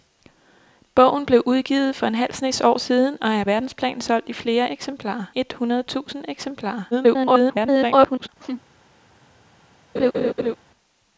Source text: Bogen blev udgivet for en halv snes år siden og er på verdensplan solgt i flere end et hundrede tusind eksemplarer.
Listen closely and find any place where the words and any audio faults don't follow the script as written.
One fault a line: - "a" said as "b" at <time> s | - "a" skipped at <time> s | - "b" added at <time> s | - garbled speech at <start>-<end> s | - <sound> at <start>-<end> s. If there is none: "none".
- "på" skipped at 3.4 s
- "end" said as "eksemplarer" at 4.7 s
- garbled speech at 6.9-8.3 s
- laugh at 8.4-8.6 s
- laugh at 9.9-10.6 s